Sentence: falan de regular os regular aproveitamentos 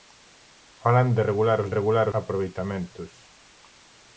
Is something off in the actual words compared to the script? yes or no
no